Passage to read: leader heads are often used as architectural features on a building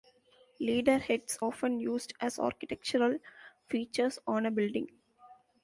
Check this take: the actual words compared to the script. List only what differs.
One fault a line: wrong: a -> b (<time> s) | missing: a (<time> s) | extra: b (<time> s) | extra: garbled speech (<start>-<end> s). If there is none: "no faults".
missing: are (1.4 s)